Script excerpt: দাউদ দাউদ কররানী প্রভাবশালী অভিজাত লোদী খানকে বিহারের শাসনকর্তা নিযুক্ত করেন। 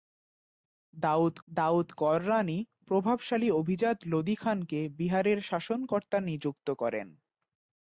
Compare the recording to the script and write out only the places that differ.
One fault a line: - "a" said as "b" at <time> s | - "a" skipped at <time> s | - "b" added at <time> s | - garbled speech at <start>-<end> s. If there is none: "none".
none